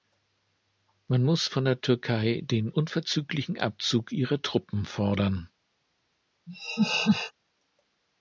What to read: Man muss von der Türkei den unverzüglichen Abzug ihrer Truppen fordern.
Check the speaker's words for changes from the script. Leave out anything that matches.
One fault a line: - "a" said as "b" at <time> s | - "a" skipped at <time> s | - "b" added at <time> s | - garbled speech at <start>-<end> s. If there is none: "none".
none